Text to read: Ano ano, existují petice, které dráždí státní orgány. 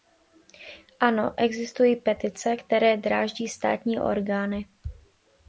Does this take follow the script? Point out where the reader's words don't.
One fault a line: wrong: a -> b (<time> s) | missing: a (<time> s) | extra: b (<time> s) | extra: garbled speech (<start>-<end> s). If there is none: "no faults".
missing: ano (1.3 s)